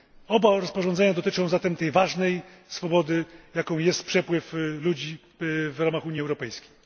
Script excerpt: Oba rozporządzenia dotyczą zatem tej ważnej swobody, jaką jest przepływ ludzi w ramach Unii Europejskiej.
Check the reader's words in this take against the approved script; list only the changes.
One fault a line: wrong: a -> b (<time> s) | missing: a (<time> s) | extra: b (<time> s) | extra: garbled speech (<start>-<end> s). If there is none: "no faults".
no faults